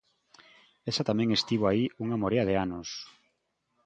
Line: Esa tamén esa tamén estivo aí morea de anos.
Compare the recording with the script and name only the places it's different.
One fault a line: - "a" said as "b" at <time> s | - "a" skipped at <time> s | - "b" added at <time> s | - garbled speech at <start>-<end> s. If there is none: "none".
- "esa tamén" skipped at 1.3 s
- "unha" added at 2.0 s